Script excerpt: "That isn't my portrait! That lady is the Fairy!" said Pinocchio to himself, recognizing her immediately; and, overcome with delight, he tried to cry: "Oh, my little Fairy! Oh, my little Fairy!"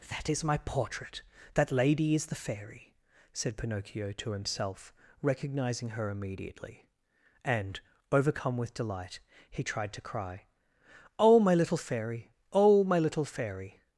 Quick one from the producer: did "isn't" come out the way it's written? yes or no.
no